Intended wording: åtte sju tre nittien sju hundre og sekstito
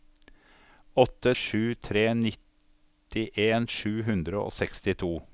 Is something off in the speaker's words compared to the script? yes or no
no